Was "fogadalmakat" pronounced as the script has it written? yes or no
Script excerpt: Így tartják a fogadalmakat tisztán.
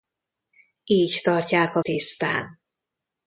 no